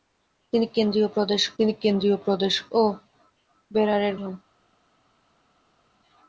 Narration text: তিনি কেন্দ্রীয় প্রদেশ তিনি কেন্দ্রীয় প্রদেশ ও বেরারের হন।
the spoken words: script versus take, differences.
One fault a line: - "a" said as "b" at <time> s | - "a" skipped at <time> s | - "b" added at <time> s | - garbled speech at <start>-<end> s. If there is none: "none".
none